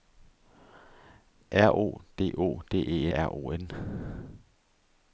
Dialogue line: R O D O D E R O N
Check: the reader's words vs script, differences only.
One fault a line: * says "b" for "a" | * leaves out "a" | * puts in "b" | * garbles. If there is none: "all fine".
all fine